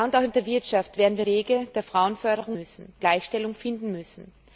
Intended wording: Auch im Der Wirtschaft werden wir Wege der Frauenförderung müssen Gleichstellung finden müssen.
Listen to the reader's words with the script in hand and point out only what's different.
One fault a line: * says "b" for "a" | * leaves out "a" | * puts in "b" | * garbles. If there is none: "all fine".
all fine